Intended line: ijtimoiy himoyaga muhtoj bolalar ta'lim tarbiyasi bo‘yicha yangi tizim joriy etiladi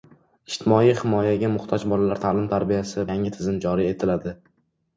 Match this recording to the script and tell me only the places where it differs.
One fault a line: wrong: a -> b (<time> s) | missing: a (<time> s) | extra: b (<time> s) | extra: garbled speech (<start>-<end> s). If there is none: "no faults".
missing: bo‘yicha (3.1 s)